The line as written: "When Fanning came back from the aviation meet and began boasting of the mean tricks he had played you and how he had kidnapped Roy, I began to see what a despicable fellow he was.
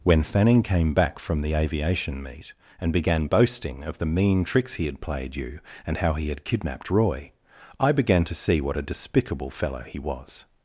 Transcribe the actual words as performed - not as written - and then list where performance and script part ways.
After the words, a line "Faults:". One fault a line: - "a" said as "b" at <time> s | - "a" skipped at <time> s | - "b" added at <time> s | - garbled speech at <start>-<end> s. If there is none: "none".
"When Fanning came back from the aviation meet and began boasting of the mean tricks he had played you and how he had kidnapped Roy, I began to see what a despicable fellow he was.
Faults:
none